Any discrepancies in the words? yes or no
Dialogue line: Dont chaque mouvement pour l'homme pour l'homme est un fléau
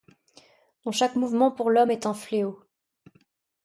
yes